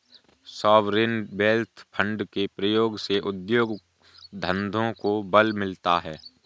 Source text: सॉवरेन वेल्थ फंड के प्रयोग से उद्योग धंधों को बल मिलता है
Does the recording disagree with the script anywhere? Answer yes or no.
no